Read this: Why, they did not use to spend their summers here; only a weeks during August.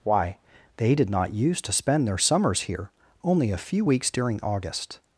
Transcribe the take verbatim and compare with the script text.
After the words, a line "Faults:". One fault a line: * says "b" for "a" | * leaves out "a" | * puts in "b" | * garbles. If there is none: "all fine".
Why, they did not use to spend their summers here; only a few weeks during August.
Faults:
* puts in "few"